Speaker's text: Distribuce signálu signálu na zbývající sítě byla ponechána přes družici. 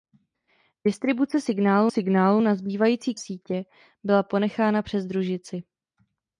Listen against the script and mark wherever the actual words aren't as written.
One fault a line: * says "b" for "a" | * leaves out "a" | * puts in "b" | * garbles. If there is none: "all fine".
all fine